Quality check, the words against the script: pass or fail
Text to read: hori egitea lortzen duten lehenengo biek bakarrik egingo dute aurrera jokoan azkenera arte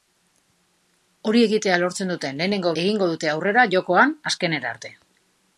fail